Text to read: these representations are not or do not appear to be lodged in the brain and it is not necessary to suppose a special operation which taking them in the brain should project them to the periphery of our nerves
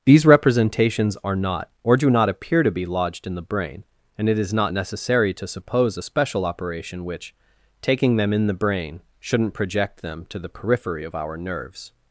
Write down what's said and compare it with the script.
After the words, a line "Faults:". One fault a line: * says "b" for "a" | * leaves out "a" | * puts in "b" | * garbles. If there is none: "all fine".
these representations are not or do not appear to be lodged in the brain and it is not necessary to suppose a special operation which taking them in the brain shouldn't project them to the periphery of our nerves
Faults:
* says "shouldn't" for "should"